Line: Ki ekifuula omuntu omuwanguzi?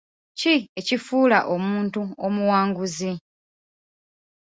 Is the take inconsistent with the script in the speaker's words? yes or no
no